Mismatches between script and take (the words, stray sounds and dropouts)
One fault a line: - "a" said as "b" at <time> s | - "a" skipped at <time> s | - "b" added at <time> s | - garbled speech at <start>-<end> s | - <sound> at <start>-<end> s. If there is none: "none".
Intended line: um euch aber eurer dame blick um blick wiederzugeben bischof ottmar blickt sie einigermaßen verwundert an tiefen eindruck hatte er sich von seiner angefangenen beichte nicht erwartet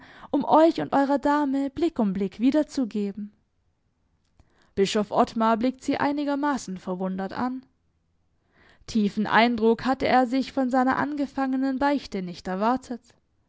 - "aber" said as "und" at 0.8 s